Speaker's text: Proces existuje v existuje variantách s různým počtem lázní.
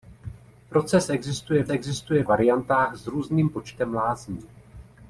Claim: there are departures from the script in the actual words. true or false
false